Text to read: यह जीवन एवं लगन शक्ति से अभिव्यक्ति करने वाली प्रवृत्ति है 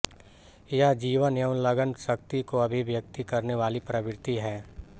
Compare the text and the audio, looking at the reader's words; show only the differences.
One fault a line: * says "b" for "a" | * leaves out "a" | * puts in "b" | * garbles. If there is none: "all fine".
* says "को" for "से"